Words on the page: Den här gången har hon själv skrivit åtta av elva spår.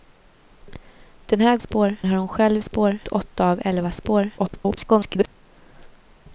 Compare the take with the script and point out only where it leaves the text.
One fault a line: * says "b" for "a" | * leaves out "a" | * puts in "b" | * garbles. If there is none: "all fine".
* says "spår" for "gången"
* says "spår" for "skrivit"
* garbles